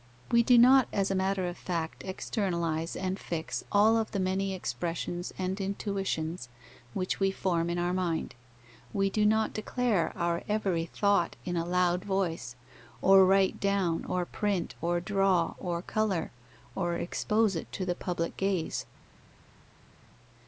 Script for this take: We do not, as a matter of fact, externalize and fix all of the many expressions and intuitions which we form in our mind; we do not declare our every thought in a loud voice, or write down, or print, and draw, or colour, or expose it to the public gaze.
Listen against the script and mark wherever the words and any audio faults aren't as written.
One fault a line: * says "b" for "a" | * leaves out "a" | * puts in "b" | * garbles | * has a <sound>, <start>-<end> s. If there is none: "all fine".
* says "or" for "and"